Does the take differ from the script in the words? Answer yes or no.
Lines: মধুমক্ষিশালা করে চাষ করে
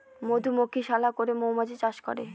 yes